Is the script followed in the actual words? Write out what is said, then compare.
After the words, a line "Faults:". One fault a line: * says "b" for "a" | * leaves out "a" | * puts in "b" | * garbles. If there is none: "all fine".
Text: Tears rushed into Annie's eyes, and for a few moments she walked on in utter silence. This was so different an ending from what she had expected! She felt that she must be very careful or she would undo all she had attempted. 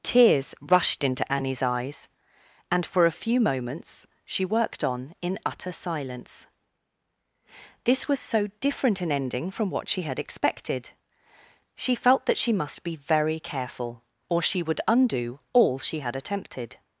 Tears rushed into Annie's eyes, and for a few moments she worked on in utter silence. This was so different an ending from what she had expected! She felt that she must be very careful or she would undo all she had attempted.
Faults:
* says "worked" for "walked"